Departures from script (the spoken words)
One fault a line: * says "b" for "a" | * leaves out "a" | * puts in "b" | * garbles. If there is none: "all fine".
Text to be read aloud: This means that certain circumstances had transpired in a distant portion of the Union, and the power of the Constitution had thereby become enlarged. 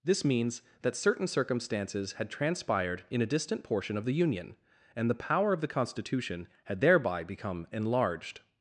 all fine